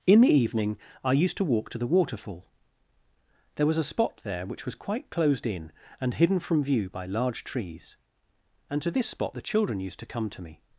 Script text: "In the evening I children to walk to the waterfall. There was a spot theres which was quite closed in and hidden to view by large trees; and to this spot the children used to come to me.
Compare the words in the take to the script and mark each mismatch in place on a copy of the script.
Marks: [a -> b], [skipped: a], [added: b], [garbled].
"In the evening I [children -> used] to walk to the waterfall. There was a spot [theres -> there] which was quite closed in and hidden [to -> from] view by large trees; and to this spot the children used to come to me.